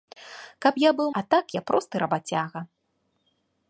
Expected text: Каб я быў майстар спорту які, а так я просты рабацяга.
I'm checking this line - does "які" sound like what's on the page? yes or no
no